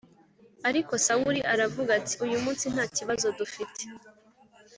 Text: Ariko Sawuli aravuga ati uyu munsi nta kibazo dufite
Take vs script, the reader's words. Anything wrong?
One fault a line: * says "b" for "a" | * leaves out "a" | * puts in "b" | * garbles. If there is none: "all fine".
all fine